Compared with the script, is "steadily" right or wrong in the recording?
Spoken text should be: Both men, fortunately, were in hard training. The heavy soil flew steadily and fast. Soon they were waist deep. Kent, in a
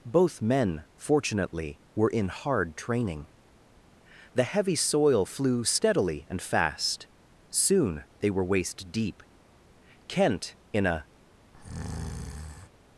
right